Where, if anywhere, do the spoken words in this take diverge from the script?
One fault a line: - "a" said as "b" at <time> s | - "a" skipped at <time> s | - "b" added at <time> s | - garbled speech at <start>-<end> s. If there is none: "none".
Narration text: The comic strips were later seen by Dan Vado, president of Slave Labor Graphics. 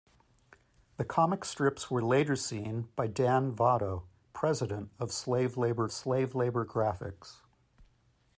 - "Slave Labor" added at 5.9 s